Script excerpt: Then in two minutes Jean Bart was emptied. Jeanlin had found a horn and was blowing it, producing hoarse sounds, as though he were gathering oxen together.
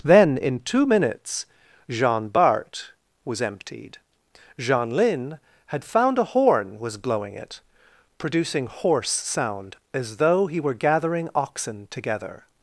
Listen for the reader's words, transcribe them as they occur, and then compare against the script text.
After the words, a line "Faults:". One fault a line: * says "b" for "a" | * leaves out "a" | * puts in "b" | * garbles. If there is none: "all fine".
Then in two minutes Jean Bart was emptied. Jeanlin had found a horn was blowing it, producing hoarse sound, as though he were gathering oxen together.
Faults:
* leaves out "and"
* says "sound" for "sounds"